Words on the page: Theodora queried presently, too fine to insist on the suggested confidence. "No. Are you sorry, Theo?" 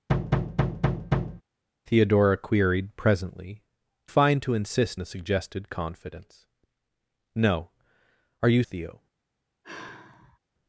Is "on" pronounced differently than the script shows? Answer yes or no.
yes